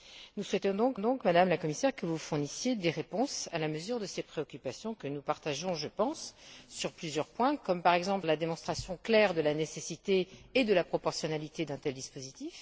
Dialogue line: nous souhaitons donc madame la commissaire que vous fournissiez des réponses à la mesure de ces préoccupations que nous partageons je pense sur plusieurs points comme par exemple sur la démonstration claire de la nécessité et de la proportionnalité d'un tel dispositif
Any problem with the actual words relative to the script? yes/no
yes